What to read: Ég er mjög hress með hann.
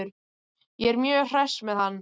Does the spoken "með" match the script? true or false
true